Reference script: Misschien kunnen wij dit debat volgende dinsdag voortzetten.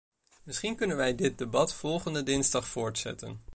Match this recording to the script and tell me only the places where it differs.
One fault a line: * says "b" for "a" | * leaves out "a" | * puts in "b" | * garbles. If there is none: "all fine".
all fine